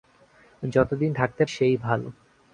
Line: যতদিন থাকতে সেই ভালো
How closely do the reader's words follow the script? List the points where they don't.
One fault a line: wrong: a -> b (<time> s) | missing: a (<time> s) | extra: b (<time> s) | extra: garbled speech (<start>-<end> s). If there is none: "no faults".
no faults